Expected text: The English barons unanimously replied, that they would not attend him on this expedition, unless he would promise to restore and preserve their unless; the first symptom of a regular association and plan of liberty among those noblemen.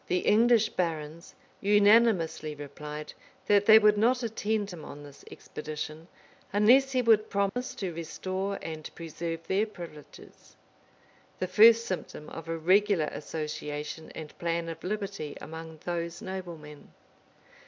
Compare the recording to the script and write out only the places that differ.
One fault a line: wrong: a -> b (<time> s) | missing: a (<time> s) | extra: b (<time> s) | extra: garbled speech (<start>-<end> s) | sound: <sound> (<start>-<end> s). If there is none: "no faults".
sound: dropout (7.5-7.6 s)
wrong: unless -> privileges (9.7 s)